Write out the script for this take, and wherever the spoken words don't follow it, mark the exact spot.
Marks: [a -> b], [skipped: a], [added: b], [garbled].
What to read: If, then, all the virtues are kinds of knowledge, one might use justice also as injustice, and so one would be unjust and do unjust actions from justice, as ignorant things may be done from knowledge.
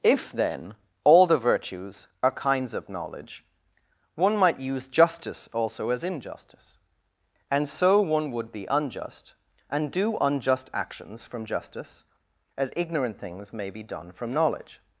If, then, all the virtues are kinds of knowledge, one might use justice also as injustice, and so one would be unjust and do unjust actions from justice, as ignorant things may be done from knowledge.